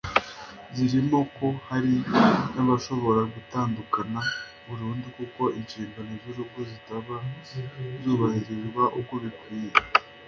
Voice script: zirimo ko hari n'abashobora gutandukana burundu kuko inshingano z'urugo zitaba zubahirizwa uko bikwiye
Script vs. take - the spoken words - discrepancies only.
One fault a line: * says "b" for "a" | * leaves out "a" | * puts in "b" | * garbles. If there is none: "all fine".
all fine